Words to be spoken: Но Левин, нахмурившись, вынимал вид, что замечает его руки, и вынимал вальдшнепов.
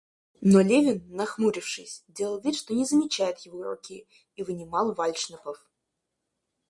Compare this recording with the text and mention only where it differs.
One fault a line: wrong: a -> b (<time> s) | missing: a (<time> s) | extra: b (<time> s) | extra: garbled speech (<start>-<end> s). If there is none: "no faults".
wrong: вынимал -> делал (2.1 s)
extra: не (2.7 s)